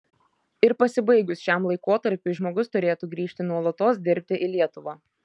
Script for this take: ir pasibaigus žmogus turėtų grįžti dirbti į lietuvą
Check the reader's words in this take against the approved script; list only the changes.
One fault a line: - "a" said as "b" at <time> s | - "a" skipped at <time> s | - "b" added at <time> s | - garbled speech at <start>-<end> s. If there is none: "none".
- "šiam laikotarpiui" added at 1.5 s
- "nuolatos" added at 3.5 s